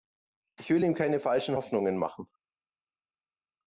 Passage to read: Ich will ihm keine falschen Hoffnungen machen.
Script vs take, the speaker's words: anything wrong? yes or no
no